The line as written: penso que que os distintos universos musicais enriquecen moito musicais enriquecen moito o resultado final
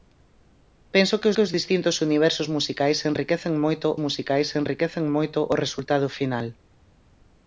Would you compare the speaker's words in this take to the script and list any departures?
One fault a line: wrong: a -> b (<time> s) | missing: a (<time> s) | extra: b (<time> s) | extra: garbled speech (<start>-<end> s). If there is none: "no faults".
no faults